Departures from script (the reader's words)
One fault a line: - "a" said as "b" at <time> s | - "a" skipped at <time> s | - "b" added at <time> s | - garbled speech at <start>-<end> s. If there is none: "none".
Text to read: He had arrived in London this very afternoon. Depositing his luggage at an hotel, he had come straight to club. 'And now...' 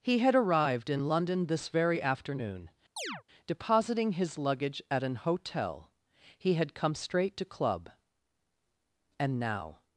none